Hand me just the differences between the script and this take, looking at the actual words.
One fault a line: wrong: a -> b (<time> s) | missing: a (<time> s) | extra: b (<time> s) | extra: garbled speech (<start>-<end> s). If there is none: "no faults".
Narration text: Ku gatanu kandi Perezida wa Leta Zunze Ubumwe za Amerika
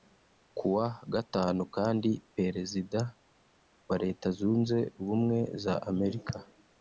extra: wa (0.8 s)